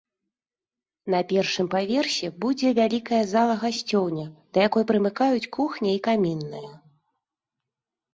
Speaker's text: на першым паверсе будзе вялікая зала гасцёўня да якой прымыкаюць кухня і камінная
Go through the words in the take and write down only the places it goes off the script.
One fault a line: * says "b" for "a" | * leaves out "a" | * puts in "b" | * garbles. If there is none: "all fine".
all fine